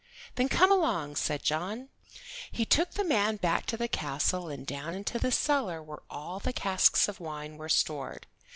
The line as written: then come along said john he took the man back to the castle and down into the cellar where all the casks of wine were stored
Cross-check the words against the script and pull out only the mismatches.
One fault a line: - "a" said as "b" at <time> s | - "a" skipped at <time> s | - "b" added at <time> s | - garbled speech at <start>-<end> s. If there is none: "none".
none